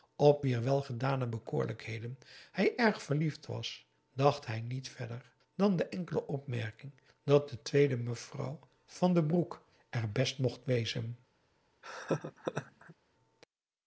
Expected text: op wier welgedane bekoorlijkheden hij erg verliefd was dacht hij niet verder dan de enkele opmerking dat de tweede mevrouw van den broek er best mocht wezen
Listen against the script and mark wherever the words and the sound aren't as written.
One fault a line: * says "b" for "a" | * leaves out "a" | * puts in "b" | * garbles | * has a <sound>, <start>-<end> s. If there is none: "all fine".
* has a laugh, 11.8-13.0 s